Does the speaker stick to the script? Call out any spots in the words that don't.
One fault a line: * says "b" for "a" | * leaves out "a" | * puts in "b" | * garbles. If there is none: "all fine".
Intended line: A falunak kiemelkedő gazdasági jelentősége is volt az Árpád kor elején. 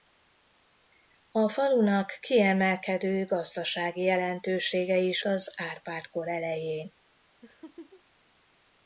* leaves out "volt"